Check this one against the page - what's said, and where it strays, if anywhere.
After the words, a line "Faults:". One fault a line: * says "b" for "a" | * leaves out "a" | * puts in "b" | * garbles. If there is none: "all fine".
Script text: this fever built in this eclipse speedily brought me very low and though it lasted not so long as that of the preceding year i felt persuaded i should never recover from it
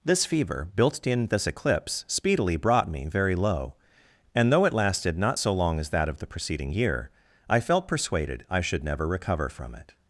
this fever built in this eclipse speedily brought me very low and though it lasted not so long as that of the preceding year i felt persuaded i should never recover from it
Faults:
all fine